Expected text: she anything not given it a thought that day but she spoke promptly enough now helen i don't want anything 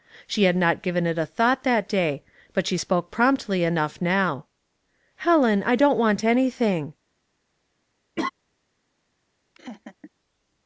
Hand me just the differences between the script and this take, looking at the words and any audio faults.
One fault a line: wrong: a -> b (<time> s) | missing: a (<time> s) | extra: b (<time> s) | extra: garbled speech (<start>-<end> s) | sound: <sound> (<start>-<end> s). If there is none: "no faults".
wrong: anything -> had (0.5 s)
sound: laugh (8.2-8.3 s)
sound: laugh (9.5-10.1 s)